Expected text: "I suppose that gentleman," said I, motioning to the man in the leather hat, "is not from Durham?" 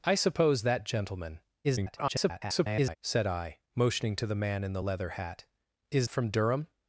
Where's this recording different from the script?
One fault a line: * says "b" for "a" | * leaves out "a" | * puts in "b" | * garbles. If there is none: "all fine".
* garbles
* leaves out "not"